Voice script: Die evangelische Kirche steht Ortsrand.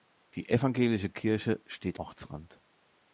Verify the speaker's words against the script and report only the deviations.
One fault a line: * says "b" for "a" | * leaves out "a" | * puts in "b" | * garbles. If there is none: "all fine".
all fine